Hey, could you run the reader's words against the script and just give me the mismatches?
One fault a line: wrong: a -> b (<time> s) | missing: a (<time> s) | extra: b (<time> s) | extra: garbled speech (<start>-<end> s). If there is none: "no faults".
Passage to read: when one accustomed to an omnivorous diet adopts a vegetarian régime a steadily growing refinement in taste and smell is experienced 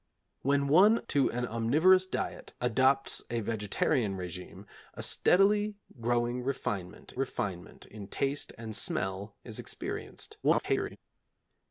missing: accustomed (1.0 s)
extra: refinement (7.1 s)
extra: garbled speech (10.4-11.0 s)